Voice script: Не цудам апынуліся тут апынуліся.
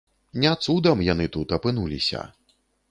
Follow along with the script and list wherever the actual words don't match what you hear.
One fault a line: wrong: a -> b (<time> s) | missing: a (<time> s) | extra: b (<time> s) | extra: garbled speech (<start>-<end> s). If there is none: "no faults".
wrong: апынуліся -> яны (1.1 s)